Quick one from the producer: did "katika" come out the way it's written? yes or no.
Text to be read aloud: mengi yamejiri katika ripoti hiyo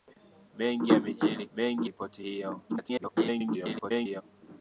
no